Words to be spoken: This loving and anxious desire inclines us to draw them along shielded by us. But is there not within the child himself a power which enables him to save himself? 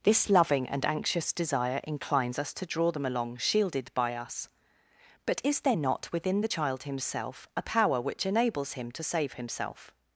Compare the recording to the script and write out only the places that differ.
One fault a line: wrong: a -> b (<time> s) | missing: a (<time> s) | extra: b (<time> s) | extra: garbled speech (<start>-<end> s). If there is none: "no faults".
no faults